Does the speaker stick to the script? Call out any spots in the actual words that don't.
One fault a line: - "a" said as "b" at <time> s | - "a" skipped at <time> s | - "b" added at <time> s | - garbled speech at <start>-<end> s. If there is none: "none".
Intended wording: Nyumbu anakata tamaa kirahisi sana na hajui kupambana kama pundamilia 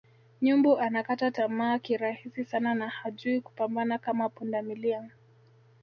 none